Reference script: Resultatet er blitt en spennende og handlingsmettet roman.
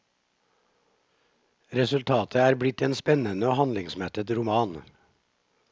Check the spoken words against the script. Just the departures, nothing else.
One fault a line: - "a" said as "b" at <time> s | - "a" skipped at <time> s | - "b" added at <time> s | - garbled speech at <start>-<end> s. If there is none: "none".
none